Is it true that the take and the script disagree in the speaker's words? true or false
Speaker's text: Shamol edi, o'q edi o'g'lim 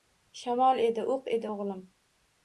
false